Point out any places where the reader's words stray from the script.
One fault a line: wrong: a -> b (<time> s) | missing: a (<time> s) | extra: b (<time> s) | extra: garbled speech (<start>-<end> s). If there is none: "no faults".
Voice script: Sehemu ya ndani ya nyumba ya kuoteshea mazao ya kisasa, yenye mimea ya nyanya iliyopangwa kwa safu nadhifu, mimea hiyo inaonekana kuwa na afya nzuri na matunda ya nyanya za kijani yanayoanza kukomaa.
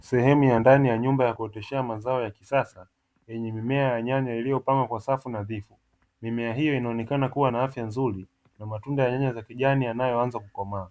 no faults